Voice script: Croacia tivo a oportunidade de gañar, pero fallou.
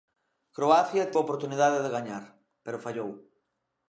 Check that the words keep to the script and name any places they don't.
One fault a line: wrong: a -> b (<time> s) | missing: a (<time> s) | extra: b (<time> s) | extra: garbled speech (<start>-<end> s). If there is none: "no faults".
missing: tivo (1.1 s)